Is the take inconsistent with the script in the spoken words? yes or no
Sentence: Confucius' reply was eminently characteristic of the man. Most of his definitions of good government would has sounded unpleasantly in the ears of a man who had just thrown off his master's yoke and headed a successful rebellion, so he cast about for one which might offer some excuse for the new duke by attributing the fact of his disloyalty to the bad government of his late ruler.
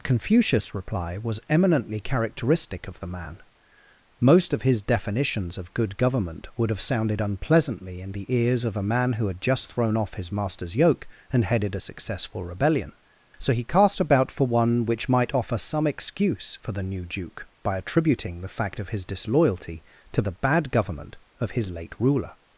yes